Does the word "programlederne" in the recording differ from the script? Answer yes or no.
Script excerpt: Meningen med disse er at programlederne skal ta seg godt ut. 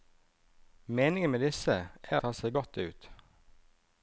yes